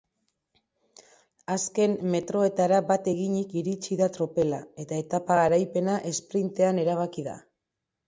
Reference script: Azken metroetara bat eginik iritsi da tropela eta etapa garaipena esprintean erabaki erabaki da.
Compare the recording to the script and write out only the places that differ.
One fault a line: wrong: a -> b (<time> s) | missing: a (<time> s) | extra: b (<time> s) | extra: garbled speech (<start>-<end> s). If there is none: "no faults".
missing: erabaki (7.3 s)